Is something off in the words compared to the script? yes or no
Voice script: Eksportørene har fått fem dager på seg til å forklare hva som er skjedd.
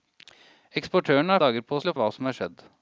yes